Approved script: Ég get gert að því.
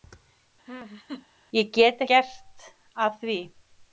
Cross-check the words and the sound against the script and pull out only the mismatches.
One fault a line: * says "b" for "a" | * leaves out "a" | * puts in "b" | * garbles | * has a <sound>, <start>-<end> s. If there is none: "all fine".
* has a laugh, 0.7-1.3 s